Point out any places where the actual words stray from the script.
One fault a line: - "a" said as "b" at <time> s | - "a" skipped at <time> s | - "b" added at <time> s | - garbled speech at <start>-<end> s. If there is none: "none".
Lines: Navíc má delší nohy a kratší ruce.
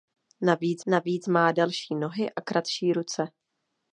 - "navíc" added at 0.9 s